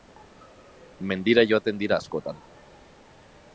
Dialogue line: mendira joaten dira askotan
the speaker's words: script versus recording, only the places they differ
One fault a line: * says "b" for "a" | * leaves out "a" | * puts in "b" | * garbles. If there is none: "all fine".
all fine